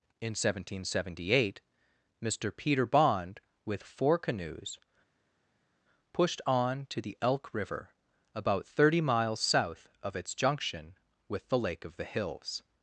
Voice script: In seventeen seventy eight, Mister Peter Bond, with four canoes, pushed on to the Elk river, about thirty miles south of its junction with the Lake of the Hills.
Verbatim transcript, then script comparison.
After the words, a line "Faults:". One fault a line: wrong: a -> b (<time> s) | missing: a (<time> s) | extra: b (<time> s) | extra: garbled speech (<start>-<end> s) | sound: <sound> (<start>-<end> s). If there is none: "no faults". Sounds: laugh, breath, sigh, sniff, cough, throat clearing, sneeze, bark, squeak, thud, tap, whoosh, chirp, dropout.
In seventeen seventy eight, Mister Peter Bond, with four canoes, pushed on to the Elk river, about thirty miles south of its junction with the Lake of the Hills.
Faults:
no faults